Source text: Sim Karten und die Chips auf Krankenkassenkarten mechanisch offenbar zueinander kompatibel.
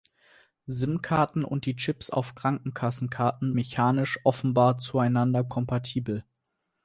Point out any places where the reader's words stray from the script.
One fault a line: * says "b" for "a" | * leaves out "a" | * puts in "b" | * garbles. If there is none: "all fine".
all fine